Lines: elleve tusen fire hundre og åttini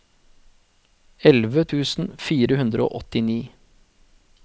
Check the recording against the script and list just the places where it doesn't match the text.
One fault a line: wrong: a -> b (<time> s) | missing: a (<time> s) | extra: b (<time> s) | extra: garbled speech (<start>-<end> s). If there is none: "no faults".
no faults